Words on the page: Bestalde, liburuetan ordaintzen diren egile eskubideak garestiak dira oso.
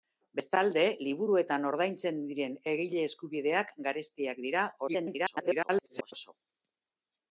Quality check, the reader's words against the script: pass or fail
fail